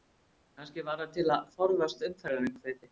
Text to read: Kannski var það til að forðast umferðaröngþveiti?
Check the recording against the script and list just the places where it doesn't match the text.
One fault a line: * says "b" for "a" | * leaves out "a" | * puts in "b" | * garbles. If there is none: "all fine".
all fine